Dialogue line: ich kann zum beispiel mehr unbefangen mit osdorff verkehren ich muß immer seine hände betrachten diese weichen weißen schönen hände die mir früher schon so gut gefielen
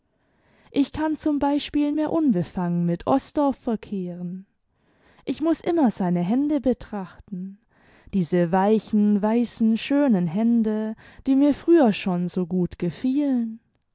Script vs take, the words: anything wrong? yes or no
no